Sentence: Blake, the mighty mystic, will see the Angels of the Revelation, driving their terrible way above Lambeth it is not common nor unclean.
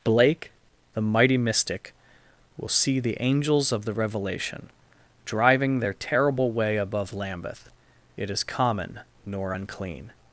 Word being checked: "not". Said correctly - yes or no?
no